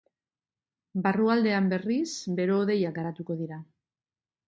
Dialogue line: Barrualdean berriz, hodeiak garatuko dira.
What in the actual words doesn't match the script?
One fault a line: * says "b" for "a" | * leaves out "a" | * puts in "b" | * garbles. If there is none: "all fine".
* puts in "bero"